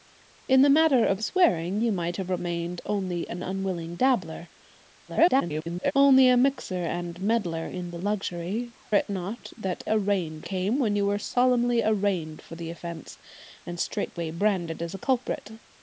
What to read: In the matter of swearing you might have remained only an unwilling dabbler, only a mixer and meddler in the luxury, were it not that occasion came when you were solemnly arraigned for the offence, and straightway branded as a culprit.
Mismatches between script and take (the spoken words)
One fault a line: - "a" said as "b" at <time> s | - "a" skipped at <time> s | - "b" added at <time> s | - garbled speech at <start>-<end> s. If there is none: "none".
- garbled speech at 5.1-5.9 s
- "were" skipped at 8.7 s
- "occasion" said as "arraigned" at 9.9 s